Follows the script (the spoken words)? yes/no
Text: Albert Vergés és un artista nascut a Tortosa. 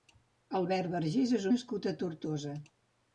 no